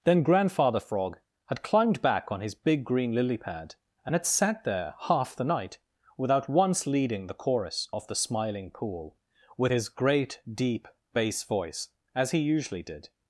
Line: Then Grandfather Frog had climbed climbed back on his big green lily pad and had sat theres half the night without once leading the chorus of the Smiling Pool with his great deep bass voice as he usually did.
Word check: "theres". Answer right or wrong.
wrong